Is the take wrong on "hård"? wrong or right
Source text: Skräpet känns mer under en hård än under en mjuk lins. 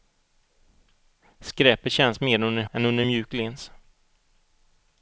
wrong